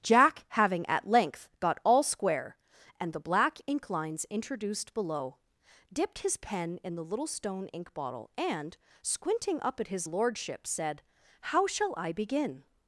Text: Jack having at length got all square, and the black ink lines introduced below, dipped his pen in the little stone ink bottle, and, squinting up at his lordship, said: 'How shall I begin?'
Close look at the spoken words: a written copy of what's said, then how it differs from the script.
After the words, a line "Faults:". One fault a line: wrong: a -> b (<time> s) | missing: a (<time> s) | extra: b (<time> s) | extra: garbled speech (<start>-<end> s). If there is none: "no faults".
Jack having at length got all square, and the black ink lines introduced below, dipped his pen in the little stone ink bottle, and, squinting up at his lordship, said: 'How shall I begin?'
Faults:
no faults